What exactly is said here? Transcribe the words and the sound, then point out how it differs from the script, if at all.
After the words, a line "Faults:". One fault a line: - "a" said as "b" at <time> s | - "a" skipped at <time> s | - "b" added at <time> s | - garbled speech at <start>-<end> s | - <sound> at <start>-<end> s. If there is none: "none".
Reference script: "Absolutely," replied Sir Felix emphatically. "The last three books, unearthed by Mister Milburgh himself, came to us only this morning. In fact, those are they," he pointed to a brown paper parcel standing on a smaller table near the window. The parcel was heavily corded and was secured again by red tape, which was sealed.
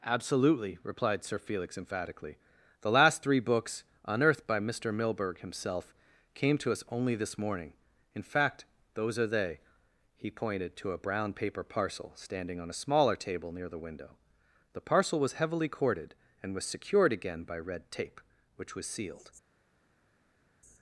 "Absolutely," replied Sir Felix emphatically. "The last three books, unearthed by Mister Milburgh himself, came to us only this morning. In fact, those are they," he pointed to a brown paper parcel standing on a smaller table near the window. The parcel was heavily corded and was secured again by red tape, which was sealed.
Faults:
none